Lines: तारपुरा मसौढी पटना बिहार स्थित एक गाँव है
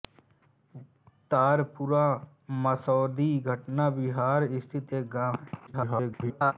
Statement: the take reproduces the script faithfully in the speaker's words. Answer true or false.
false